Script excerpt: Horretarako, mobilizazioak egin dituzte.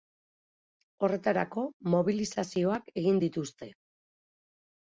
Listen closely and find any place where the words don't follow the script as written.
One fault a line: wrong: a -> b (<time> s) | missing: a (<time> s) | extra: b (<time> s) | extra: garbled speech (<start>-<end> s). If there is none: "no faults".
no faults